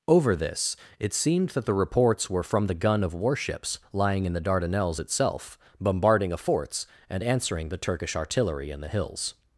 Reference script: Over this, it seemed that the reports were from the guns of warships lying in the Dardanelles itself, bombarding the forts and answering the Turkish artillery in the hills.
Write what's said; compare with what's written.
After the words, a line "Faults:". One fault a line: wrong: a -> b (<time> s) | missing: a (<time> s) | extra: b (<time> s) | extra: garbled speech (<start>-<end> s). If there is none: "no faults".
Over this, it seemed that the reports were from the gun of warships lying in the Dardanelles itself, bombarding a forts and answering the Turkish artillery in the hills.
Faults:
wrong: guns -> gun (2.7 s)
wrong: the -> a (6.3 s)